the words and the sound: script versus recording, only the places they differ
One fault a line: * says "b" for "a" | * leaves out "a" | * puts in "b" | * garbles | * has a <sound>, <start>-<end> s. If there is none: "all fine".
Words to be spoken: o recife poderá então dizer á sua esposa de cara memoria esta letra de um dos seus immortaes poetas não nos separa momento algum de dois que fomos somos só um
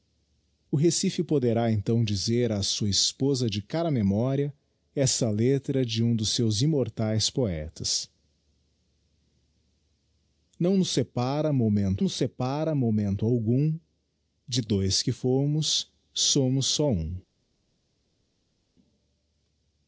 * puts in "nos separa momento"